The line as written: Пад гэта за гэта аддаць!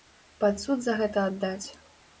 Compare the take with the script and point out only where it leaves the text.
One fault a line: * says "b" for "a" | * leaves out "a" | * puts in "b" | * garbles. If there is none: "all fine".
* says "суд" for "гэта"